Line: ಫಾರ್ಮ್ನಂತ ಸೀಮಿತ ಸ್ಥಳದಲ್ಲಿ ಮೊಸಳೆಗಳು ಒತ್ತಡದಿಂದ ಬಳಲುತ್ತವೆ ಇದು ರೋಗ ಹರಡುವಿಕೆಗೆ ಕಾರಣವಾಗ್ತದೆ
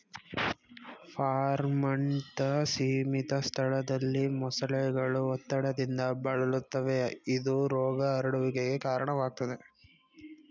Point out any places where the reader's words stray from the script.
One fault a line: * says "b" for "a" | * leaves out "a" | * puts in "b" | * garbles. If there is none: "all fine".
all fine